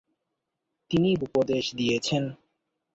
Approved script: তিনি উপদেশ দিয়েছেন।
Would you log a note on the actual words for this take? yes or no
no